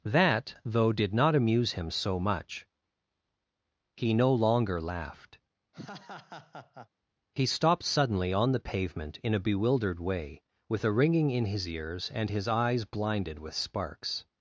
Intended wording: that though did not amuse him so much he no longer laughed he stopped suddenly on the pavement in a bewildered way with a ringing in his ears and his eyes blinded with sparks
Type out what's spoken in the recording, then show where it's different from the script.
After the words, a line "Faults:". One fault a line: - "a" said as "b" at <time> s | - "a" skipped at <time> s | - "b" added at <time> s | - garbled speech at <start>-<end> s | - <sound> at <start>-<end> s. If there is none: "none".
that though did not amuse him so much he no longer laughed he stopped suddenly on the pavement in a bewildered way with a ringing in his ears and his eyes blinded with sparks
Faults:
- laugh at 5.7-6.9 s